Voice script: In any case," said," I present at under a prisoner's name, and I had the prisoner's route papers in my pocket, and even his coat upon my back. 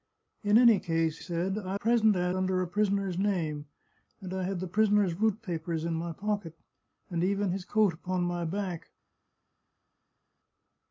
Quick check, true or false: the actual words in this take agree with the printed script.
true